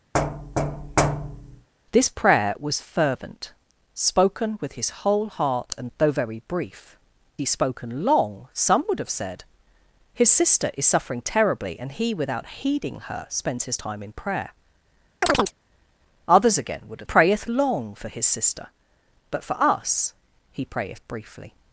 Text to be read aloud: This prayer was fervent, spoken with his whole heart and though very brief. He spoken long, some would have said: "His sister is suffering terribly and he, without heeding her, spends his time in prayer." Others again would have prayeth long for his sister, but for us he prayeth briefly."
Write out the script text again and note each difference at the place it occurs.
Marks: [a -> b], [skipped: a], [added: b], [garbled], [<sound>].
[thud] This prayer was fervent, spoken with his whole heart and though very brief. He spoken long, some would have said: "His sister is suffering terribly and he, without heeding her, spends his time in prayer." [chirp] Others again would have prayeth long for his sister, but for us he prayeth briefly."